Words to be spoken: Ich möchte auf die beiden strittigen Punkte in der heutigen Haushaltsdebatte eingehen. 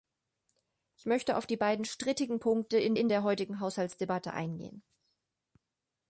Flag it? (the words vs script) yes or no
yes